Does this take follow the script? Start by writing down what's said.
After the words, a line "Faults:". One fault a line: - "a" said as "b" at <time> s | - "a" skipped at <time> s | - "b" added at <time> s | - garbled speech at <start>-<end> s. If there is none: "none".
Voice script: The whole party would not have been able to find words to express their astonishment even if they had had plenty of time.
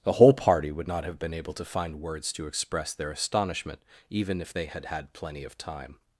The whole party would not have been able to find words to express their astonishment even if they had had plenty of time.
Faults:
none